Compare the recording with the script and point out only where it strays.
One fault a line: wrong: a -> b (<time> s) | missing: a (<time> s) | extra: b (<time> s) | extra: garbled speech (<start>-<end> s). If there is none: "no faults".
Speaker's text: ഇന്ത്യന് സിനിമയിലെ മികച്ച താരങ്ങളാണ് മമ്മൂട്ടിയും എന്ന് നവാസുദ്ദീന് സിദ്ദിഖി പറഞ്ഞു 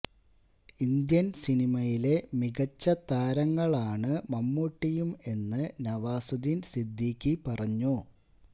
no faults